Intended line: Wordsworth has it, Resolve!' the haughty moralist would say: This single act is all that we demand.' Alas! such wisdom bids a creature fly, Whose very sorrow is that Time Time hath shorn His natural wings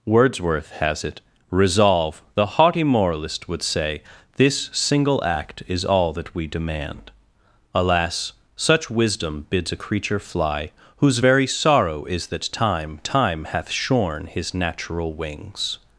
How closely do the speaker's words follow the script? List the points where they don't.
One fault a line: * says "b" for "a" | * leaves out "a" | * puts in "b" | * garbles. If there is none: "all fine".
all fine